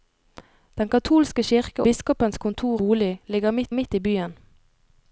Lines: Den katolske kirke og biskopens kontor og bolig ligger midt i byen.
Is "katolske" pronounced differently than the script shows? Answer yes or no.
no